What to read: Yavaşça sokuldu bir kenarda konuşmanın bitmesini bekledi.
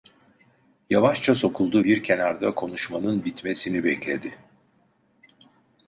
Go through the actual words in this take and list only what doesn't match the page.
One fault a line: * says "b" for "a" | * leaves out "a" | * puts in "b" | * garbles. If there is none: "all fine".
all fine